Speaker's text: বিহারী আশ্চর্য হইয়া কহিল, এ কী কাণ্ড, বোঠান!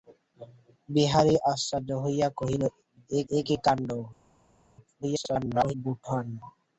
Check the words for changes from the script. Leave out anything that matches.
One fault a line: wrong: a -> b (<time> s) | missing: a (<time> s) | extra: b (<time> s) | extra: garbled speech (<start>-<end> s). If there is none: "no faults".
extra: এ (3.3 s)
extra: garbled speech (5.0-5.7 s)